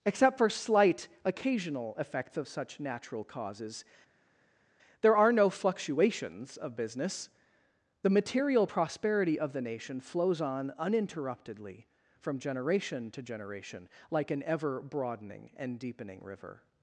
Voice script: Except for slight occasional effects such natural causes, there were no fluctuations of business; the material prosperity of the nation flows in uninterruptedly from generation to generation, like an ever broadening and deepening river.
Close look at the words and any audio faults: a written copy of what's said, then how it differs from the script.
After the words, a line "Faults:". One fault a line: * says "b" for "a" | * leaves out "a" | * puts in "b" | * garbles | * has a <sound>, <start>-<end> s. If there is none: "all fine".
Except for slight occasional effects of such natural causes, there are no fluctuations of business; the material prosperity of the nation flows on uninterruptedly from generation to generation, like an ever broadening and deepening river.
Faults:
* puts in "of"
* says "are" for "were"
* says "on" for "in"